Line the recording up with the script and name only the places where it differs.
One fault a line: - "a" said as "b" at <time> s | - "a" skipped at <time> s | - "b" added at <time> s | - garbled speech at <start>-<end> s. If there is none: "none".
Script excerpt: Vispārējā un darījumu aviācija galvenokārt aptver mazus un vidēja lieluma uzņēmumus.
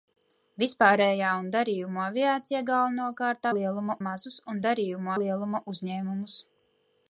- "aptver" said as "lieluma" at 3.6 s
- "vidēja" said as "darījumu" at 4.7 s